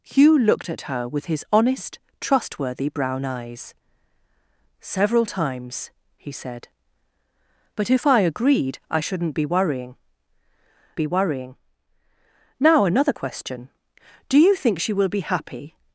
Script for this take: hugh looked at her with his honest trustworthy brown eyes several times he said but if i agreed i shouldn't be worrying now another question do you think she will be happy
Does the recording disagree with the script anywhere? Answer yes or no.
yes